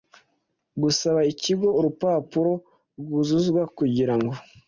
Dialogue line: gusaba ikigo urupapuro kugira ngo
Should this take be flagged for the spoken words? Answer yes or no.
yes